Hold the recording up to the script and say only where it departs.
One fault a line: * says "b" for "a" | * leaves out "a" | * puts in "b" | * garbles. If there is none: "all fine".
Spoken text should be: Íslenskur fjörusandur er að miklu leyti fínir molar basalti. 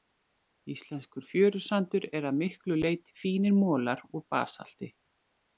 * puts in "úr"